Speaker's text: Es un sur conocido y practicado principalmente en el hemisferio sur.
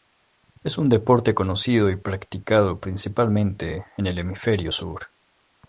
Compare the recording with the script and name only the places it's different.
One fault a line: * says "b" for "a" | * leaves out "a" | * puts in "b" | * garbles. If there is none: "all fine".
* says "deporte" for "sur"